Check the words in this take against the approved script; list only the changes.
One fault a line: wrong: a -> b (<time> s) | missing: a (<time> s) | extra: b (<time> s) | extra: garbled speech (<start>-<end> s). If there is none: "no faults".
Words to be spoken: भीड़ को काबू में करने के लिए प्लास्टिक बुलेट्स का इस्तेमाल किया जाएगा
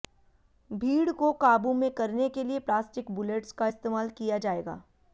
no faults